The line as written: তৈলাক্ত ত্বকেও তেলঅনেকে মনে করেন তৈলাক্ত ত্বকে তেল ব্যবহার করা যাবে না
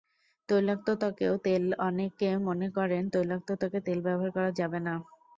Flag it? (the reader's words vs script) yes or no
no